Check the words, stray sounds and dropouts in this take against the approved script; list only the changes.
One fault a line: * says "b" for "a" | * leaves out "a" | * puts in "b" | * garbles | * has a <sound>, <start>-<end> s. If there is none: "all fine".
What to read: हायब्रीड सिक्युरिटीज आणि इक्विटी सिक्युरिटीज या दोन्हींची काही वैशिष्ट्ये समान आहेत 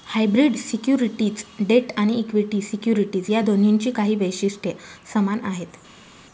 * puts in "डेट"